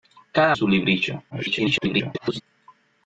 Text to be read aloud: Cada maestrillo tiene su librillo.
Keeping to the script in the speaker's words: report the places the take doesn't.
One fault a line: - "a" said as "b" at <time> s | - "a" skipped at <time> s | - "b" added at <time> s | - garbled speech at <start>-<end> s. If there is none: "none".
- "maestrillo tiene" skipped at 0.6 s
- garbled speech at 1.3-2.4 s